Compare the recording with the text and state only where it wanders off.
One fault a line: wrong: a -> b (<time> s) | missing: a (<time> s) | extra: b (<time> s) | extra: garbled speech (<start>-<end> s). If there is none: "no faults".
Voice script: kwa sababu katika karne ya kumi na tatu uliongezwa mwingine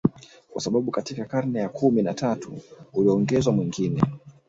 no faults